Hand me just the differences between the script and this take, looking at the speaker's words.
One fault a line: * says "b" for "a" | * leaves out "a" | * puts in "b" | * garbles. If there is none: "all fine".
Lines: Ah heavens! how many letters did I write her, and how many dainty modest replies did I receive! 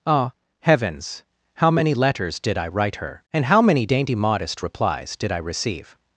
all fine